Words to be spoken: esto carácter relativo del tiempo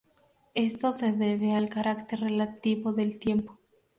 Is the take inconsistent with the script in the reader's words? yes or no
yes